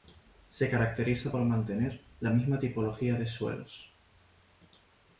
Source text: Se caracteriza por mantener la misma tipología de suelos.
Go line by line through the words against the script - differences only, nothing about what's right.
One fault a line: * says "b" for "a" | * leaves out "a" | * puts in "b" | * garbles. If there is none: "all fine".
all fine